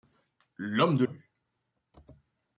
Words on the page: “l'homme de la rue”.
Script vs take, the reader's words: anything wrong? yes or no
yes